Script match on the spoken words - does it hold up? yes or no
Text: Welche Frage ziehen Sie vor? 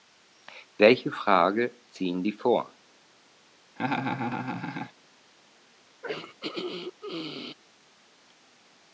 yes